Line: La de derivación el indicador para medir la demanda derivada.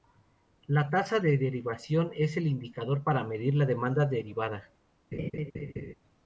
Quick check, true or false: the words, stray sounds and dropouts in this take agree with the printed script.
false